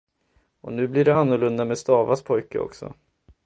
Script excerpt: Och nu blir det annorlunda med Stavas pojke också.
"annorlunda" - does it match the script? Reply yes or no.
yes